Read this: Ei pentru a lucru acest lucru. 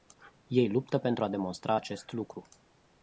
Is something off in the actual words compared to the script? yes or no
yes